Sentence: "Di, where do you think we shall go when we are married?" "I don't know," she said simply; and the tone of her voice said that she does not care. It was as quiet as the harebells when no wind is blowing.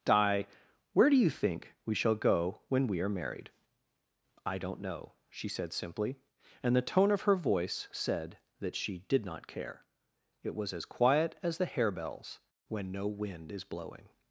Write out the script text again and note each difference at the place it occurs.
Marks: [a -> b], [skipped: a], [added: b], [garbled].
"Di, where do you think we shall go when we are married?" "I don't know," she said simply; and the tone of her voice said that she [does -> did] not care. It was as quiet as the harebells when no wind is blowing.